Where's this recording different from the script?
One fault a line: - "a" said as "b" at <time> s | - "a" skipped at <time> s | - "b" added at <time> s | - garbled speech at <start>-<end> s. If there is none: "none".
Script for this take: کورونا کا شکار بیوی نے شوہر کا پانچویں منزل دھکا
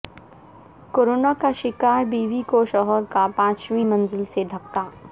- "نے" said as "کو" at 2.5 s
- "سے" added at 4.3 s